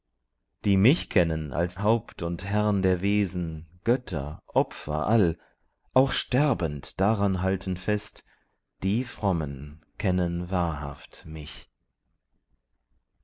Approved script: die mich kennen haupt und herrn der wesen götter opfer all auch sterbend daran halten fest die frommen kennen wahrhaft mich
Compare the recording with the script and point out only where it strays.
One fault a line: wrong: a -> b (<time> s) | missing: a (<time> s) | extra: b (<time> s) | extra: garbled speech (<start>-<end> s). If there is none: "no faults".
extra: als (1.5 s)